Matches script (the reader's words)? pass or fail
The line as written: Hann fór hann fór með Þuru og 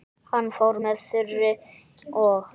fail